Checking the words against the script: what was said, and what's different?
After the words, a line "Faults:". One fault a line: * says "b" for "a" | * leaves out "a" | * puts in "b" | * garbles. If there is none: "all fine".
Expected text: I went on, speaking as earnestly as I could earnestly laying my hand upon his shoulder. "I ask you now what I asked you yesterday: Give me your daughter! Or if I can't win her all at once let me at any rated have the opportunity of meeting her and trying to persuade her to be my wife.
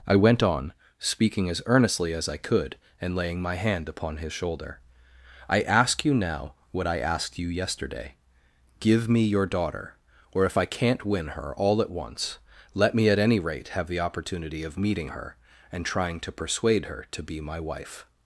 I went on, speaking as earnestly as I could and laying my hand upon his shoulder. "I ask you now what I asked you yesterday: Give me your daughter! Or if I can't win her all at once let me at any rate have the opportunity of meeting her and trying to persuade her to be my wife.
Faults:
* says "and" for "earnestly"
* says "rate" for "rated"